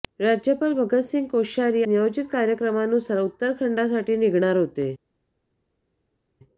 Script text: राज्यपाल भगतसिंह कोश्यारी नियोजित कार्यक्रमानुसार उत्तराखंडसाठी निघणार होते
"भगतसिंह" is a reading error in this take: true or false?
false